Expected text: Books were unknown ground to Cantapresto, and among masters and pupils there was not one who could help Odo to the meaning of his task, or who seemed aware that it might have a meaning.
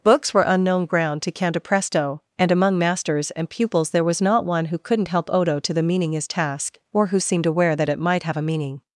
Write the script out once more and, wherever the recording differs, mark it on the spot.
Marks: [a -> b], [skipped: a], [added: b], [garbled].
Books were unknown ground to Cantapresto, and among masters and pupils there was not one who [could -> couldn't] help Odo to the meaning [skipped: of] his task, or who seemed aware that it might have a meaning.